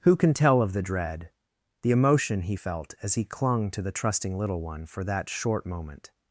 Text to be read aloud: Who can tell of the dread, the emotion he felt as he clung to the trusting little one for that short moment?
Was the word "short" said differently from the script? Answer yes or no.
no